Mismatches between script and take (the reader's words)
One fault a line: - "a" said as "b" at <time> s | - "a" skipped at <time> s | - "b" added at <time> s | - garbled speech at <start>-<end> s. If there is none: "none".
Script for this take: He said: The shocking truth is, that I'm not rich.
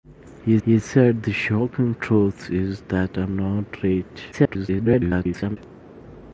- "he" added at 0.6 s
- garbled speech at 4.3-5.6 s